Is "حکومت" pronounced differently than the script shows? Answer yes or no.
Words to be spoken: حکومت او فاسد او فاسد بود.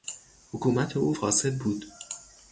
no